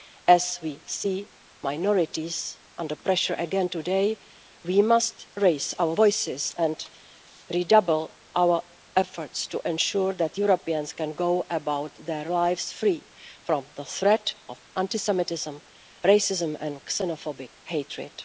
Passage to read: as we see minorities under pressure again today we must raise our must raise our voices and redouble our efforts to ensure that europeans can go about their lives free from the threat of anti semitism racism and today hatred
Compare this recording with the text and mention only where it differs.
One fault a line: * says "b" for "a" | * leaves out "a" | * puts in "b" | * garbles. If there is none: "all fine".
* leaves out "must raise our"
* says "xenophobic" for "today"